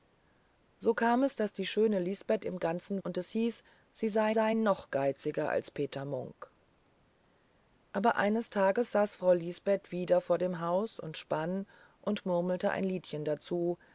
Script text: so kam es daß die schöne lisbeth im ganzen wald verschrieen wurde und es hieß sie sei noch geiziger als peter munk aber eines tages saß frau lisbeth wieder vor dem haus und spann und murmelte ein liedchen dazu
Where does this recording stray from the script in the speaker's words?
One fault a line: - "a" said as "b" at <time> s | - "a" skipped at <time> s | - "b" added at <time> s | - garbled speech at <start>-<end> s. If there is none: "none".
- "wald verschrieen wurde" skipped at 3.0 s
- "sei" added at 4.3 s